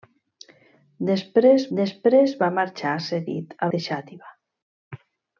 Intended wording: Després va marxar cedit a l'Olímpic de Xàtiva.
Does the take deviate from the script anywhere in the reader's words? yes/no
yes